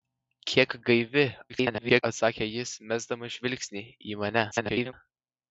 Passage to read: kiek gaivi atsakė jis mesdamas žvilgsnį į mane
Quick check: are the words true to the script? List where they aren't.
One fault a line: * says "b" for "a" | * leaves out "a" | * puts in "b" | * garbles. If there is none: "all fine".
* garbles
* garbles